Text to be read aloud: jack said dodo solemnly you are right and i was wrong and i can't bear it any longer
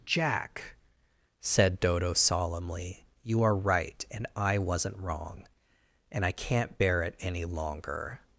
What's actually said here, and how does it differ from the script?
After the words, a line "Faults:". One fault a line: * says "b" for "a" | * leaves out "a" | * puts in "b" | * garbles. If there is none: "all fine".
jack said dodo solemnly you are right and i wasn't wrong and i can't bear it any longer
Faults:
* says "wasn't" for "was"